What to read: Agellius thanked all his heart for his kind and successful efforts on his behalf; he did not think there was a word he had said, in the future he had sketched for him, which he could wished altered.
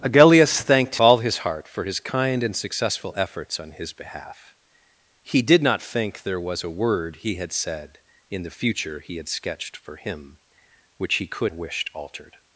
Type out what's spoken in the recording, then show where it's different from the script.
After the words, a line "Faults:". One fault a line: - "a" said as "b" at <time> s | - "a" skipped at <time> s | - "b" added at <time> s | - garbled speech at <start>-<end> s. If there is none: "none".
Agellius thanked all his heart for his kind and successful efforts on his behalf; he did not think there was a word he had said, in the future he had sketched for him, which he could wished altered.
Faults:
none